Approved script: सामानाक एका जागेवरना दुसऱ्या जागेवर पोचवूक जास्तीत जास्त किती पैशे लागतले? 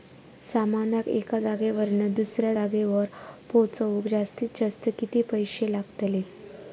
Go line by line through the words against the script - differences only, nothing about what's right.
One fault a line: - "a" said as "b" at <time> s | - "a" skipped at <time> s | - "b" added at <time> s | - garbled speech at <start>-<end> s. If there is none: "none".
none